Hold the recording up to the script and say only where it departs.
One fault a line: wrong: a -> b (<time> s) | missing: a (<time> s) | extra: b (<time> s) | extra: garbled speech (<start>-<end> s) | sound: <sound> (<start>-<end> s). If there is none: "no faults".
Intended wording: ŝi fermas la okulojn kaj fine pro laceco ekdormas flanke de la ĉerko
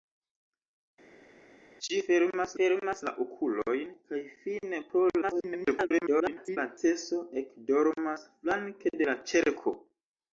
extra: fermas (2.6 s)
extra: garbled speech (5.2-6.6 s)